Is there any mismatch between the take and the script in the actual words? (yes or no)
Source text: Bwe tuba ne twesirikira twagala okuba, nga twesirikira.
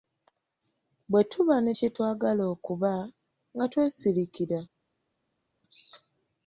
yes